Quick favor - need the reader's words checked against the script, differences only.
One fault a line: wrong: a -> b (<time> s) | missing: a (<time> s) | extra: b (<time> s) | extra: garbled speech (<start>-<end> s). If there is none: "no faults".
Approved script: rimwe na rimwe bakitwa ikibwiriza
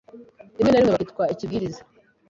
no faults